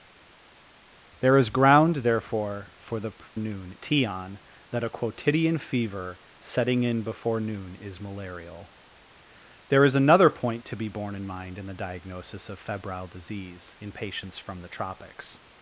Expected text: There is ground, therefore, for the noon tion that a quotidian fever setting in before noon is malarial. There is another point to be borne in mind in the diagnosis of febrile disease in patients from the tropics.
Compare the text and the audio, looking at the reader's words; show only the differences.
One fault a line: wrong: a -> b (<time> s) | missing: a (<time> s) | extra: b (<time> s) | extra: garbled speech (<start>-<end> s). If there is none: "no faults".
no faults